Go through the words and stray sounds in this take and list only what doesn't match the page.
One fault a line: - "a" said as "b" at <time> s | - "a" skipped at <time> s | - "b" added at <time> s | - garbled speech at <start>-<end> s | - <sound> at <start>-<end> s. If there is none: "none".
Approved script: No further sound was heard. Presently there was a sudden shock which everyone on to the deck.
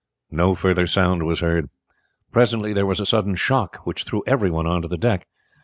- "threw" added at 4.0 s